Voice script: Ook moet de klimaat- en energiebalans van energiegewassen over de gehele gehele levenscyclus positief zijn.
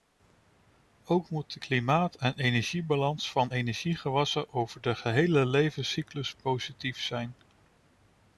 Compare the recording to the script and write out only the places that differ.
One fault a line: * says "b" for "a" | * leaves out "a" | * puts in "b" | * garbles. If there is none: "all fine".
* leaves out "gehele"